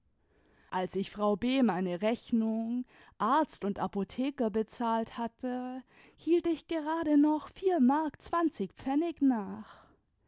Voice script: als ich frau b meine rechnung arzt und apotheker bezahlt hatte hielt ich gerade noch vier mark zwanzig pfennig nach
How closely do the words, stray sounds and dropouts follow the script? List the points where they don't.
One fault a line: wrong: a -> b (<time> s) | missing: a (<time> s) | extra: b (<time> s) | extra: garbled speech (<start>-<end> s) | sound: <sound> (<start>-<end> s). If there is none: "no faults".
no faults